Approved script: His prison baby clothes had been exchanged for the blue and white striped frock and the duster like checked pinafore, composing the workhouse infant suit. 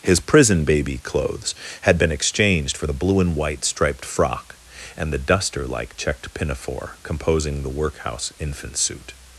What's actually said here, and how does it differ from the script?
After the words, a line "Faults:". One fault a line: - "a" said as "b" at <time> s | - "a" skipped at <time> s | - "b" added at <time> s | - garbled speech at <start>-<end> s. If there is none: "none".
His prison baby clothes had been exchanged for the blue and white striped frock and the duster like checked pinafore, composing the workhouse infant suit.
Faults:
none